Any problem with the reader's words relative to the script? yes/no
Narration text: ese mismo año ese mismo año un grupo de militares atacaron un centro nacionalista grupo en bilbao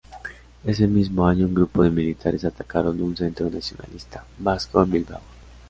yes